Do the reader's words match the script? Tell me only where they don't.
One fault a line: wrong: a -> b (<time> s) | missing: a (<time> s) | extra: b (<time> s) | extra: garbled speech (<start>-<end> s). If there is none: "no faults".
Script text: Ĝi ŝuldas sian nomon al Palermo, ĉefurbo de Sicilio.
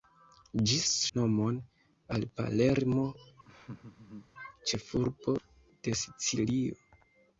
missing: ŝuldas sian (0.8 s)